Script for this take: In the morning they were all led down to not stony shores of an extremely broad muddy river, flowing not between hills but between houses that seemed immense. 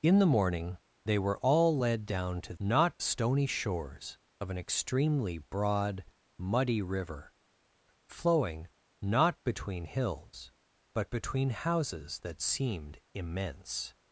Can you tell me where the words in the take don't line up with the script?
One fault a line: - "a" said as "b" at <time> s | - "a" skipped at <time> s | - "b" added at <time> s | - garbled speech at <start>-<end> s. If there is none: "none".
none